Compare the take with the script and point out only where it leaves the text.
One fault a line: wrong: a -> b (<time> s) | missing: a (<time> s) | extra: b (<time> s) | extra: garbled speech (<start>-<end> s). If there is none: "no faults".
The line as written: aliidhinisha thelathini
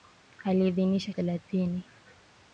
no faults